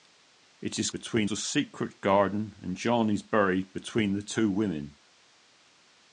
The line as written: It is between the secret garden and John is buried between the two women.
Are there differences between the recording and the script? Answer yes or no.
no